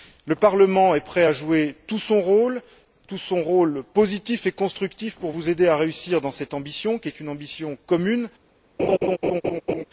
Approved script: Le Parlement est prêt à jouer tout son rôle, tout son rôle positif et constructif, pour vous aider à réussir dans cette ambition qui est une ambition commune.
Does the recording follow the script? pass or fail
pass